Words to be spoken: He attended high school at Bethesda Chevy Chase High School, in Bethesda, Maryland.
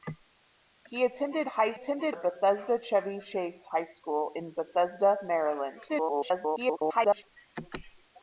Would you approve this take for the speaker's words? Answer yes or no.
no